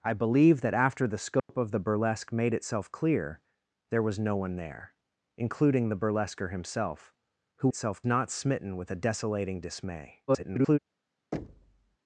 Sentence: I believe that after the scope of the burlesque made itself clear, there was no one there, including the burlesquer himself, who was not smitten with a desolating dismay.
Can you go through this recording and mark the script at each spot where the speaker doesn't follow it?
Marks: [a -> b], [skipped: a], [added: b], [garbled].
I believe that after the scope of the burlesque made itself clear, there was no one there, including the burlesquer himself, who [was -> itself] not smitten with a desolating dismay. [garbled]